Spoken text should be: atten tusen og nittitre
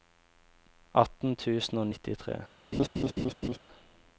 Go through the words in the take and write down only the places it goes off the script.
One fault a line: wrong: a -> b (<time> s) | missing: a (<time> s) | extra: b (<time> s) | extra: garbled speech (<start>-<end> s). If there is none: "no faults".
no faults